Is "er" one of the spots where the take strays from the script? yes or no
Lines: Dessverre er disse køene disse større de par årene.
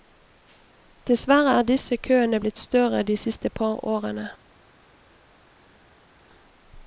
no